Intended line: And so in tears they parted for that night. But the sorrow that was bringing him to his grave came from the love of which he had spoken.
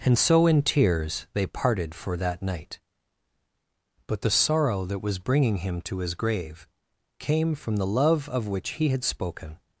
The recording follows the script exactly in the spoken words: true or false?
true